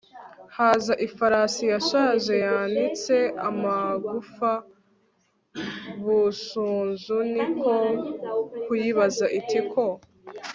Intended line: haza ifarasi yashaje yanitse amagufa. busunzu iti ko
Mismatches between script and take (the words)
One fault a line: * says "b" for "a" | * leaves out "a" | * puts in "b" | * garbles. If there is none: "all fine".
* puts in "ni ko kuyibaza"